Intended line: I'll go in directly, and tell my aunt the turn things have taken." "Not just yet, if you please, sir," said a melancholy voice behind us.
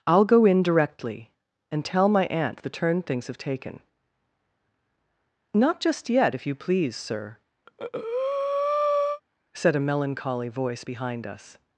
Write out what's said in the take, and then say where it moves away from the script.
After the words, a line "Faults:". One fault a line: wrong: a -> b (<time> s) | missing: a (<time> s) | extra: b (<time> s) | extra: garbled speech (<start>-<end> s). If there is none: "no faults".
I'll go in directly, and tell my aunt the turn things have taken." "Not just yet, if you please, sir," said a melancholy voice behind us.
Faults:
no faults